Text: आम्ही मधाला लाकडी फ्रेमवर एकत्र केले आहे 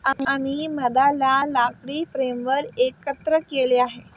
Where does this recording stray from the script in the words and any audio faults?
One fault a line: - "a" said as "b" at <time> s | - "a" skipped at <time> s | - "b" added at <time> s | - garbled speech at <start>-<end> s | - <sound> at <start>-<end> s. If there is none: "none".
- dropout at 0.1-0.2 s